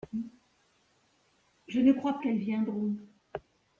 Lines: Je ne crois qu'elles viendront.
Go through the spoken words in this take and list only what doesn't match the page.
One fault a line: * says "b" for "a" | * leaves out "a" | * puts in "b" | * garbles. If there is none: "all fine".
all fine